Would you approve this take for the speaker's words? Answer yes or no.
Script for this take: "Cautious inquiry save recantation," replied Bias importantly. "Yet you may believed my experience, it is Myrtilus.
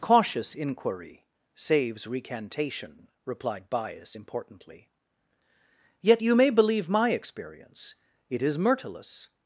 no